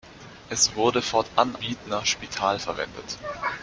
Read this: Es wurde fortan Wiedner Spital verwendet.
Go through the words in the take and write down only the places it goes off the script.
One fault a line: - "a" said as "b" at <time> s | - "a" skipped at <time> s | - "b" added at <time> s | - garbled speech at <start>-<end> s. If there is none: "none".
none